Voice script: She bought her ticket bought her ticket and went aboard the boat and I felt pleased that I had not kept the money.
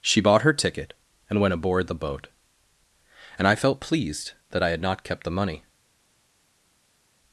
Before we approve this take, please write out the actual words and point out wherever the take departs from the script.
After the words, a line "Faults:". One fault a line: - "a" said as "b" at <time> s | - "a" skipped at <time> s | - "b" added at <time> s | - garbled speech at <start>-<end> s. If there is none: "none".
She bought her ticket and went aboard the boat and I felt pleased that I had not kept the money.
Faults:
- "bought her ticket" skipped at 0.9 s